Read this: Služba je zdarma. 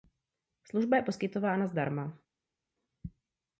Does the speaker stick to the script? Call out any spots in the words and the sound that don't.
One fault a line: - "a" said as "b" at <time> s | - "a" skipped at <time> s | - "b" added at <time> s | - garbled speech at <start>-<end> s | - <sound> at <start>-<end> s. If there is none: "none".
- "poskytována" added at 1.0 s